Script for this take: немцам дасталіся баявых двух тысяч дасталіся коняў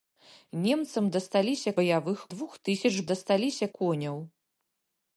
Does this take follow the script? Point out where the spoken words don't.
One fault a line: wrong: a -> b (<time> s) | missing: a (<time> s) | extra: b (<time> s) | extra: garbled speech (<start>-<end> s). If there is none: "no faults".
no faults